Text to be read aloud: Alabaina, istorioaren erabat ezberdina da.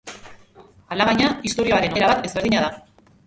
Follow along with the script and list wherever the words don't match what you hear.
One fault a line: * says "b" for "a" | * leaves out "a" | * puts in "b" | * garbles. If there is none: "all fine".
all fine